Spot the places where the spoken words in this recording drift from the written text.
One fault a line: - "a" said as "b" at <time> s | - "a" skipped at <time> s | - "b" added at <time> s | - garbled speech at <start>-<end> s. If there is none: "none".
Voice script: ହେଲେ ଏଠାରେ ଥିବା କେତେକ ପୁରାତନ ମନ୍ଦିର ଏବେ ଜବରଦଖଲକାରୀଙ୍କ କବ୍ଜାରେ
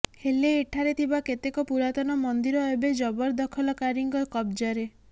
none